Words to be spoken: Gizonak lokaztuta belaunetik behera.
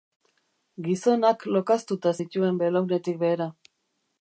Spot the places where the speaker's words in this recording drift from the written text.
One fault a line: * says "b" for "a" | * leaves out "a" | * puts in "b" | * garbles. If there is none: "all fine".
* puts in "zituen"